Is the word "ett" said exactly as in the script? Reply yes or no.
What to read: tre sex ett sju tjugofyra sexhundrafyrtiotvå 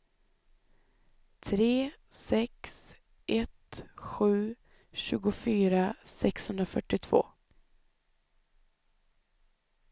yes